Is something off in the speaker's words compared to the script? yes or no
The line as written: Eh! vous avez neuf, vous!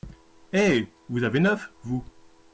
no